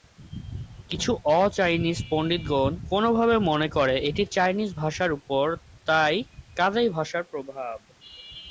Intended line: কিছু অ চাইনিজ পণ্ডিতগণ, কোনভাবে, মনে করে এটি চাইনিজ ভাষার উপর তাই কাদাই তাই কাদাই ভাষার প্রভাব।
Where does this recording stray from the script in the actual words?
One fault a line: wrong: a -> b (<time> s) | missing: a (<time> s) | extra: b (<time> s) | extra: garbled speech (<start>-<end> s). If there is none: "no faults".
missing: তাই কাদাই (6.9 s)